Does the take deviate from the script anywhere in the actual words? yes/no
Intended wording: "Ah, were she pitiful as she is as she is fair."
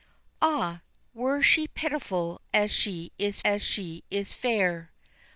no